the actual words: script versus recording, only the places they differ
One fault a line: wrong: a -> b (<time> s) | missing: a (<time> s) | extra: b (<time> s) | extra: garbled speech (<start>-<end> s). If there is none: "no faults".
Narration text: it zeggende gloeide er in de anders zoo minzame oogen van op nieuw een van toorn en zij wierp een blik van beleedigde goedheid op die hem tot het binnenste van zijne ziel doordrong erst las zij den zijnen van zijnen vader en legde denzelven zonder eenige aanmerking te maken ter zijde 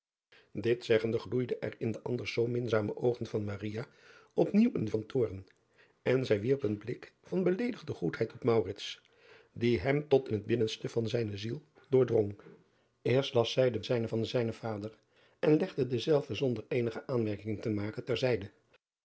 no faults